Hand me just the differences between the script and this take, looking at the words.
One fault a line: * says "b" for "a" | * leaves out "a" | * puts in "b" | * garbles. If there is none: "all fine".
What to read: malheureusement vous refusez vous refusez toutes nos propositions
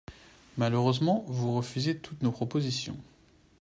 * leaves out "vous refusez"